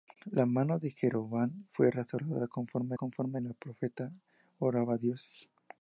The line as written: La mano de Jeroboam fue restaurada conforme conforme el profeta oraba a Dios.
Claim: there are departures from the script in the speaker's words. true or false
false